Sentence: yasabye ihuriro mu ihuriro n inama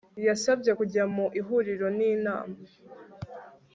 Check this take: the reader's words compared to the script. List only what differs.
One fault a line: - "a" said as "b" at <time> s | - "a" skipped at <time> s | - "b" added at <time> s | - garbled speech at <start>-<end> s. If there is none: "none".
- "ihuriro" said as "kujya" at 0.8 s